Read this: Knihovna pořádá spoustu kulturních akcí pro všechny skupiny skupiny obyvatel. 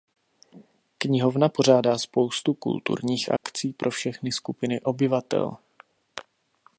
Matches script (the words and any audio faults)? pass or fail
fail